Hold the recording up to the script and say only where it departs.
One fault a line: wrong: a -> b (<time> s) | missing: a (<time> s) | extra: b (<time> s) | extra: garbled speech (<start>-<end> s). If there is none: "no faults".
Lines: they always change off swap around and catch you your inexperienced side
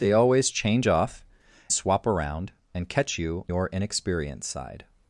no faults